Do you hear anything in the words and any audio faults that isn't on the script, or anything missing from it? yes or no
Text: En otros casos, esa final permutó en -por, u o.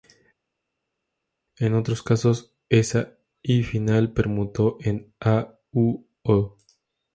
yes